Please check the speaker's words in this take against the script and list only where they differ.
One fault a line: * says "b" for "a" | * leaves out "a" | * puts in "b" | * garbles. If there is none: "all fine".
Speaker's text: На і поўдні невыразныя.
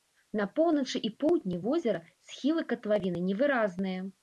* puts in "поўначы"
* puts in "возера схілы катлавіны"